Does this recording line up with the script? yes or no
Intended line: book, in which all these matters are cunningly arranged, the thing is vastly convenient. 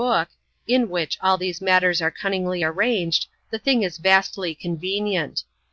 yes